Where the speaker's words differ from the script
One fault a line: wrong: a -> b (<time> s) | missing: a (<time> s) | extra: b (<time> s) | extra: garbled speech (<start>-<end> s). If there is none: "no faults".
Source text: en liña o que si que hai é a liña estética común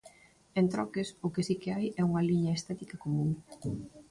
wrong: liña -> troques (0.7 s)
wrong: a -> unha (2.1 s)